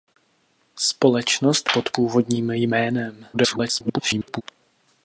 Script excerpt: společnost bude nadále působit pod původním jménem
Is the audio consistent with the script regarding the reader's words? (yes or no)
no